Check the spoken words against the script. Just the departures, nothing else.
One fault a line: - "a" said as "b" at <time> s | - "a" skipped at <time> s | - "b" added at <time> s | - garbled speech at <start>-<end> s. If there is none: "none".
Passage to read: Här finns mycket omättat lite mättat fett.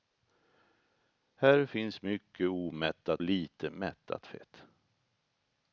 none